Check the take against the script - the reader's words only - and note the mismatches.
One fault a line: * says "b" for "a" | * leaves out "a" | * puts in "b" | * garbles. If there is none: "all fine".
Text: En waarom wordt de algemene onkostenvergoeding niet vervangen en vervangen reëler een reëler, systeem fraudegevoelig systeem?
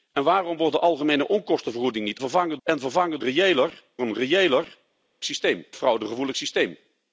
all fine